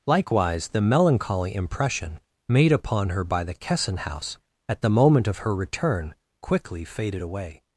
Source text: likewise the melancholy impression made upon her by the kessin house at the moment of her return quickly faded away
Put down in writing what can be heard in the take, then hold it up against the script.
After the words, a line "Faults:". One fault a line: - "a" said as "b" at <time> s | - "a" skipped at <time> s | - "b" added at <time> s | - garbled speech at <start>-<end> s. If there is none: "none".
likewise the melancholy impression made upon her by the kessin house at the moment of her return quickly faded away
Faults:
none